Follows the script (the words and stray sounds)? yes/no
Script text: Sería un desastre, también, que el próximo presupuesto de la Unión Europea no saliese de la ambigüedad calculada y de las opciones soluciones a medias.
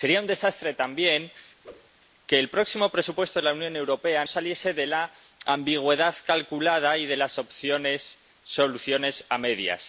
no